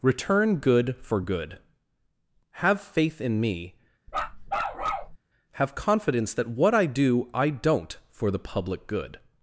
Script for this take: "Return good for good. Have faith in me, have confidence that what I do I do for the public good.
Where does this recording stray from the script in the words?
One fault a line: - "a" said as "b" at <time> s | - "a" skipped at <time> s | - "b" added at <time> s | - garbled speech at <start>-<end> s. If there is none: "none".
- "do" said as "don't" at 7.5 s